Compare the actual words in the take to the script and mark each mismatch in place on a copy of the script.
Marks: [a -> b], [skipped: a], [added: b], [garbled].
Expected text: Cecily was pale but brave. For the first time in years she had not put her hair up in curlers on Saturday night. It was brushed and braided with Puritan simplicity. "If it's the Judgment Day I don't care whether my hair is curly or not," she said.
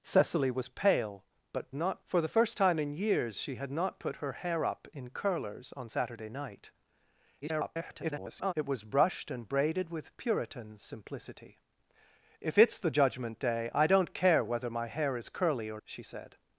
Cecily was pale but [brave. -> not] For the first time in years she had not put her hair up in curlers on Saturday night. [garbled] It was brushed and braided with Puritan simplicity. "If it's the Judgment Day I don't care whether my hair is curly or [skipped: not,"] she said.